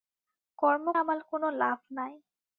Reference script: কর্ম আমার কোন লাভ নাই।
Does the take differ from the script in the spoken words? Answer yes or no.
no